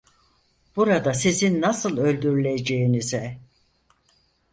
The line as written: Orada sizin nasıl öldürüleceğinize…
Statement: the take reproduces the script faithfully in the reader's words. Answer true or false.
false